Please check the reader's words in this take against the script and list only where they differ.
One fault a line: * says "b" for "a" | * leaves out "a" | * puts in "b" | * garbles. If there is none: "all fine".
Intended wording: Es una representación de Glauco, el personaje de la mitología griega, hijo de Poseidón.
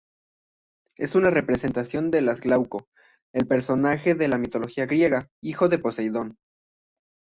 all fine